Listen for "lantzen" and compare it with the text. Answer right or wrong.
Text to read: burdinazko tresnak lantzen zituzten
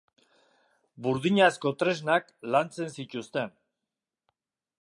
right